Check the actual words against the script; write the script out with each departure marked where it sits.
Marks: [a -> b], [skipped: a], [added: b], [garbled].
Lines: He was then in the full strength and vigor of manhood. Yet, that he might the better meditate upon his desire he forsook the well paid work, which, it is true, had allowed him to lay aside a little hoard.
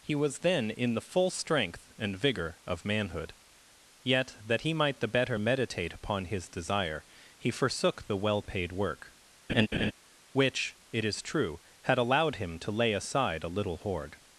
He was then in the full strength and vigor of manhood. Yet, that he might the better meditate upon his desire he forsook the well paid work, which, it is true, had allowed him to lay aside a little hoard.